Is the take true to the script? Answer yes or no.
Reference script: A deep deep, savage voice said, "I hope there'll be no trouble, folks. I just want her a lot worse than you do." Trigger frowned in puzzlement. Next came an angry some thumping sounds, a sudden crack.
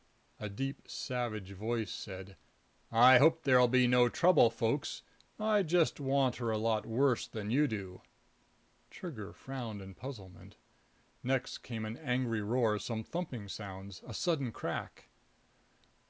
no